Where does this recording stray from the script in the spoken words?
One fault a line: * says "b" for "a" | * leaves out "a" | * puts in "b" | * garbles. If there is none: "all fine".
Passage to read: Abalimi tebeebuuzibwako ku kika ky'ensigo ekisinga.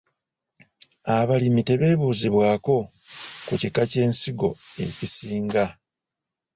all fine